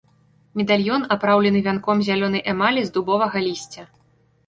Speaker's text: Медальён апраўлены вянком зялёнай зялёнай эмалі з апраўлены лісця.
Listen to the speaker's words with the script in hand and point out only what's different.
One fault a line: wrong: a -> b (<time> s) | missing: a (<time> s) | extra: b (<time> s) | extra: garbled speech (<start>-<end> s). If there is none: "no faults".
missing: зялёнай (2.5 s)
wrong: апраўлены -> дубовага (3.0 s)